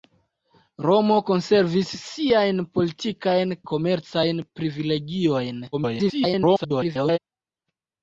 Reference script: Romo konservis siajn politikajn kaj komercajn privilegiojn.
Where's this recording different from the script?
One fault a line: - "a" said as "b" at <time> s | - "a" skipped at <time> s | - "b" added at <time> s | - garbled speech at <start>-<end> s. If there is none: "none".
- "kaj" skipped at 3.5 s
- garbled speech at 5.7-7.2 s